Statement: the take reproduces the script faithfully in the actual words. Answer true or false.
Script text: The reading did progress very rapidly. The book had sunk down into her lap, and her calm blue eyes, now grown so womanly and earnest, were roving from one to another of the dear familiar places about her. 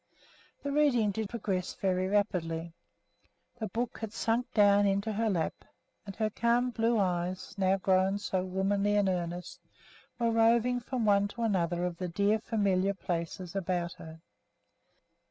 true